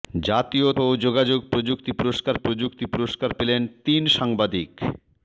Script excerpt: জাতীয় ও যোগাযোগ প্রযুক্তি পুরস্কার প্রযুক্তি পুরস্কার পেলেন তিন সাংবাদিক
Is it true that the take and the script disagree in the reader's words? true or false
false